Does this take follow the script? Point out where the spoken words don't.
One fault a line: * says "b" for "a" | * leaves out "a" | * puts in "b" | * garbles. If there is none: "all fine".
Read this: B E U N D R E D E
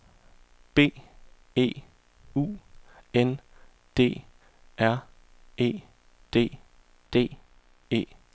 * puts in "D"